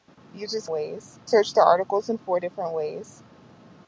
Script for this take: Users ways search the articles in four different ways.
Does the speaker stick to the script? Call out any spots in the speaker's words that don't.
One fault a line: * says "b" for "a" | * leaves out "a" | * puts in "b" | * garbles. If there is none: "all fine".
all fine